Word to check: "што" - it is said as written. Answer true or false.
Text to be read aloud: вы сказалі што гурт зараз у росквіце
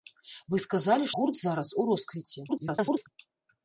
false